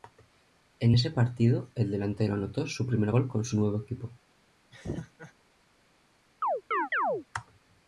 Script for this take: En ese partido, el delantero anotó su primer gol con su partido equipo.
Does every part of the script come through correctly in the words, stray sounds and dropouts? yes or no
no